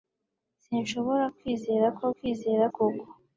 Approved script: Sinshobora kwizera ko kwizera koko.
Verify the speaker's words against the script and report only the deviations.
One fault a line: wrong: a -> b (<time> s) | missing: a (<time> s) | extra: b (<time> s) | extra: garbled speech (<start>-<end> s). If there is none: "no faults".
no faults